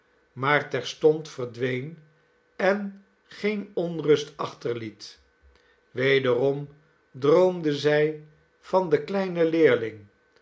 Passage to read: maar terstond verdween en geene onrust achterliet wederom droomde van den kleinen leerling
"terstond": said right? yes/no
yes